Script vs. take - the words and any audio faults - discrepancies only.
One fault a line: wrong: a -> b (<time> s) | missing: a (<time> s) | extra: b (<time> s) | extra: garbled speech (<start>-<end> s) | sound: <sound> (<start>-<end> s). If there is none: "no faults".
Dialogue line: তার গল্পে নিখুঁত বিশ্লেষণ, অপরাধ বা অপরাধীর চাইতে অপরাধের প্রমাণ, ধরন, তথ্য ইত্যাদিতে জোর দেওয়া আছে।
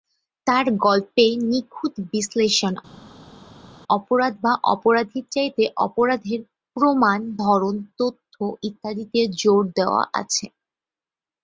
no faults